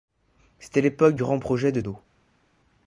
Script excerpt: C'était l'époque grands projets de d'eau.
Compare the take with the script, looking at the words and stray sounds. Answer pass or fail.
pass